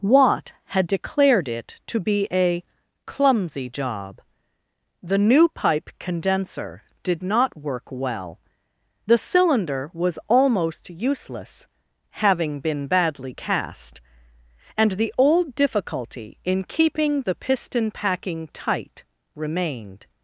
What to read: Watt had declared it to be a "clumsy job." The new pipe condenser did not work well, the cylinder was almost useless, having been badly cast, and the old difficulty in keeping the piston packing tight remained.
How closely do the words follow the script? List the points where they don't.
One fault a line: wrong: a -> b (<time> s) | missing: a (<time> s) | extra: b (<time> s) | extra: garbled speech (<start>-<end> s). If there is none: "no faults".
no faults